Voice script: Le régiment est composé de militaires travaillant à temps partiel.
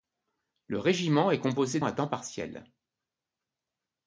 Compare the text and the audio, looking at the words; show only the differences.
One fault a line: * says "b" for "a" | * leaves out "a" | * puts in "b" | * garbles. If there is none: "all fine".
* leaves out "de militaires travaillant"